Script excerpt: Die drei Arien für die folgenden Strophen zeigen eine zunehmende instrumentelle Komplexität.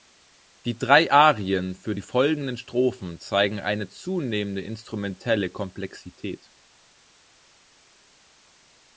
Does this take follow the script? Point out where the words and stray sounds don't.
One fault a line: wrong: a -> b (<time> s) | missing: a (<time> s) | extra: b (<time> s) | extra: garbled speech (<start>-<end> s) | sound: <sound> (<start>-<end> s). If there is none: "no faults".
no faults